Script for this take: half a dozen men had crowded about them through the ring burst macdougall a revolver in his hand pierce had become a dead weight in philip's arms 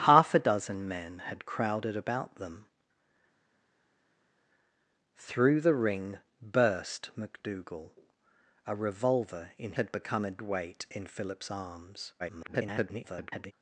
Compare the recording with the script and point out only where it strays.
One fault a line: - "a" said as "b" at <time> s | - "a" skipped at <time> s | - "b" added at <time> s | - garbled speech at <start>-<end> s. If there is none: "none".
- "his hand pierce" skipped at 9.7 s
- "dead" skipped at 10.4 s
- garbled speech at 12.2-13.5 s